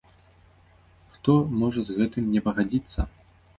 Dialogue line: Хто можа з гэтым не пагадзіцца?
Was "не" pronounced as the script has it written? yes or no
yes